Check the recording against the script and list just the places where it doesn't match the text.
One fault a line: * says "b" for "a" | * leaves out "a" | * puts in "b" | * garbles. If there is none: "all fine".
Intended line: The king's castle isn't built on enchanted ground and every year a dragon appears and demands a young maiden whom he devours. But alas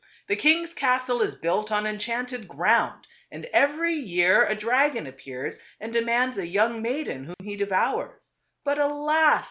* says "is" for "isn't"